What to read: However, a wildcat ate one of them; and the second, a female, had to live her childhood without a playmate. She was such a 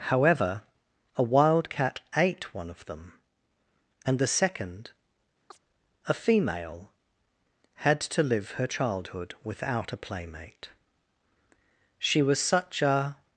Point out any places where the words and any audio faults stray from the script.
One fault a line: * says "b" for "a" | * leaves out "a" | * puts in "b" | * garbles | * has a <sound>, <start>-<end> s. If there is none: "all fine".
* has a chirp, 5.5-5.6 s